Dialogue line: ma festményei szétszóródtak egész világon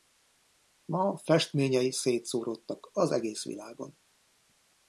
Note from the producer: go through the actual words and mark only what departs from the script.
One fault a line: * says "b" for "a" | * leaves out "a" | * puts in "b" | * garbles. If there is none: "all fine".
* puts in "az"